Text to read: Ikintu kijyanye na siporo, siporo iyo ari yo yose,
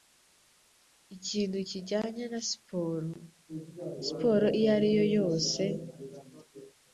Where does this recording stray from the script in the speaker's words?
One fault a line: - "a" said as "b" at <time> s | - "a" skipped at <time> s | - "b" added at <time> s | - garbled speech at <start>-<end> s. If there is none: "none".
none